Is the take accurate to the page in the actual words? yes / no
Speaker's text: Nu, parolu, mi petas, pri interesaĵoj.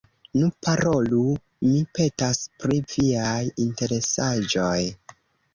no